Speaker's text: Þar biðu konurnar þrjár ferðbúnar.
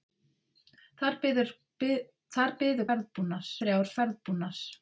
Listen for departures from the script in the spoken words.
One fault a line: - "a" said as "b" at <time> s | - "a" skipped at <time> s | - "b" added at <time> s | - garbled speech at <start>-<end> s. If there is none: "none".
- "konurnar" said as "ferðbúnar" at 2.9 s